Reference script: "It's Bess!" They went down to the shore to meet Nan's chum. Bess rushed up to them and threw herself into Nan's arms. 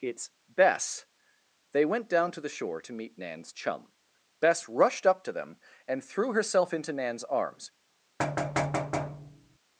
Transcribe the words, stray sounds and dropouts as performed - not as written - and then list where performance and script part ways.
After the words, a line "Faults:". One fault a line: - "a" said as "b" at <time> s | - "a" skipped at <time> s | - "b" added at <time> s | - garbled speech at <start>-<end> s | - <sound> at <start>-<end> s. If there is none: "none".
"It's Bess!" They went down to the shore to meet Nan's chum. Bess rushed up to them and threw herself into Nan's arms.
Faults:
- thud at 8.2-9.6 s